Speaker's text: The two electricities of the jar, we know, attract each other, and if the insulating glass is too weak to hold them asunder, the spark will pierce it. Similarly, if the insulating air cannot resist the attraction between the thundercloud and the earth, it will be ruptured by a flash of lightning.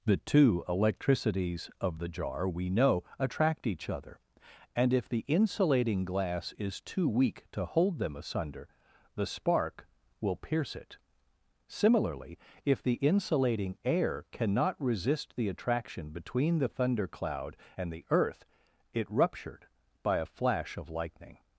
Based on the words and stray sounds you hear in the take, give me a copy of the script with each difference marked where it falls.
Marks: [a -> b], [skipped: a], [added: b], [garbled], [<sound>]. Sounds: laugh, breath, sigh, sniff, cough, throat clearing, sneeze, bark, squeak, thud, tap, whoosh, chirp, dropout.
The two electricities of the jar, we know, attract each other, and if the insulating glass is too weak to hold them asunder, the spark will pierce it. Similarly, if the insulating air cannot resist the attraction between the thundercloud and the earth, it [skipped: will be] ruptured by a flash of lightning.